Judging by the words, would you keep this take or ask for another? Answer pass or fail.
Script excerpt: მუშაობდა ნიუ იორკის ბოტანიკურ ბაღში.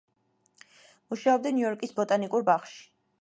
pass